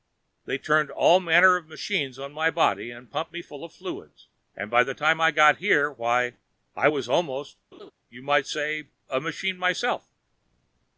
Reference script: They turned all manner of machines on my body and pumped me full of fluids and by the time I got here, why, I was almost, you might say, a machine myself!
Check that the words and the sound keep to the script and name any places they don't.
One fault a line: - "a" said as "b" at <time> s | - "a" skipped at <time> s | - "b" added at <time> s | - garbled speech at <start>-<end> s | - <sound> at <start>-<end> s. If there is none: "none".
- laugh at 7.7-7.9 s